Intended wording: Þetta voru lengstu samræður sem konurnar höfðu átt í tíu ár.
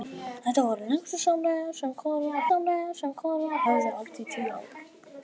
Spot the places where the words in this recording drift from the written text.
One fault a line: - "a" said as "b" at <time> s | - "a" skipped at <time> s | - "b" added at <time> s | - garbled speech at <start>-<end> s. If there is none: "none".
- "samræður sem konurnar" added at 2.5 s